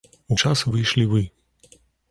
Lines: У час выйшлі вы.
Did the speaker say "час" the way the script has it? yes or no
yes